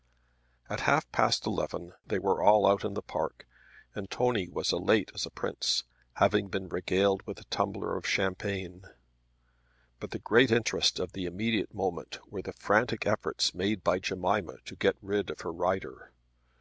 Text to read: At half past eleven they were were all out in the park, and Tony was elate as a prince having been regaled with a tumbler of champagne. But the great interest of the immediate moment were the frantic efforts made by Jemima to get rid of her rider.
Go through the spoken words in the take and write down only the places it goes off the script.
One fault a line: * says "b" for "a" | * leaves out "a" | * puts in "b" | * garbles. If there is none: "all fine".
* leaves out "were"